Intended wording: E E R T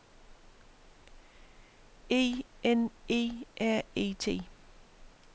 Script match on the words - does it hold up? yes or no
no